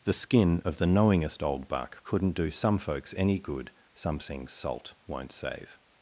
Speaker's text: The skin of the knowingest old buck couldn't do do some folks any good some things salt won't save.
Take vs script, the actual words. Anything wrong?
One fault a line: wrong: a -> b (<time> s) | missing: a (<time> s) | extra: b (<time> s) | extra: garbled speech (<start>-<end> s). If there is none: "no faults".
missing: do (2.5 s)